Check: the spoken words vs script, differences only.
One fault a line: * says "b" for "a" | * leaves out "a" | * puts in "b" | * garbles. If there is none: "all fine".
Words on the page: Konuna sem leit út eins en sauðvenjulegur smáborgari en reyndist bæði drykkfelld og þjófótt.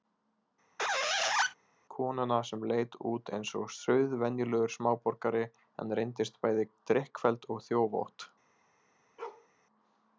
* says "og" for "en"